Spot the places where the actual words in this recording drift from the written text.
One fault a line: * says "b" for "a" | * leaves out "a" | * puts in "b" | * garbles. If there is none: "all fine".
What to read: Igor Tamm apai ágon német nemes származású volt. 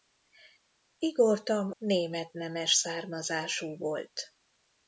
* leaves out "apai ágon"